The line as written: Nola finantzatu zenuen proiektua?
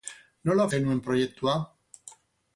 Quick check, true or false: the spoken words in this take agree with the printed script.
false